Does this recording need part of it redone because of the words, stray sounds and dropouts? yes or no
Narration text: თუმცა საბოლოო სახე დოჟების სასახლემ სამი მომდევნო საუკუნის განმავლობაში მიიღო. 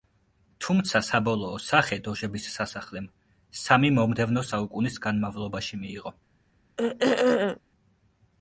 yes